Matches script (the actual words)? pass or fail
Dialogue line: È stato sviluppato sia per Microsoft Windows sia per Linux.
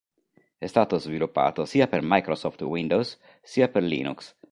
pass